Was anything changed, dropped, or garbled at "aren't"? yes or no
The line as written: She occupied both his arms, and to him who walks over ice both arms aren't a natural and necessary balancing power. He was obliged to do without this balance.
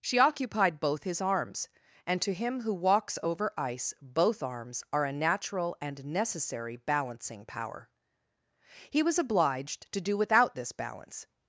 yes